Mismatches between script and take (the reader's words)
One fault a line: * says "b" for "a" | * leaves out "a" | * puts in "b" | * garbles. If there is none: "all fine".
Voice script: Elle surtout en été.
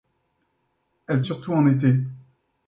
all fine